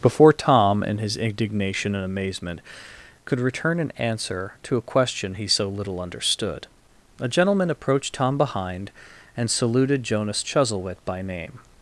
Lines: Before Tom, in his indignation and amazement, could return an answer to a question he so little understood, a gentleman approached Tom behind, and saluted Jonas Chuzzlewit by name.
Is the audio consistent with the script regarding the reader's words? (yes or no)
yes